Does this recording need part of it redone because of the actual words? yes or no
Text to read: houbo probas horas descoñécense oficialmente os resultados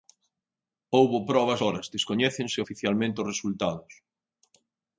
no